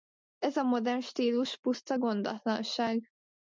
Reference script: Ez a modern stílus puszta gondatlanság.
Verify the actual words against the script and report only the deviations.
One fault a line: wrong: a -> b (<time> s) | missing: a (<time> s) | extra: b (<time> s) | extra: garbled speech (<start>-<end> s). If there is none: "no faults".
no faults